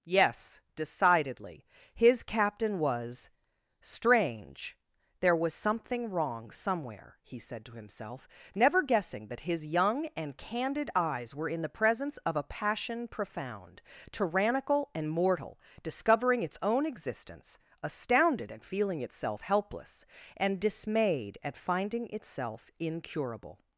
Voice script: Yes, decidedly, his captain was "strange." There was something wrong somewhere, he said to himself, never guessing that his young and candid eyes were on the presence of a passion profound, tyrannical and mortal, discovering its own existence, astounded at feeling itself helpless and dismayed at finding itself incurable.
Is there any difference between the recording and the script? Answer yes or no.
yes